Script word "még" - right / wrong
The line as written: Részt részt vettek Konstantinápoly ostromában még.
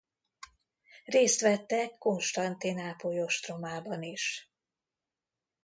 wrong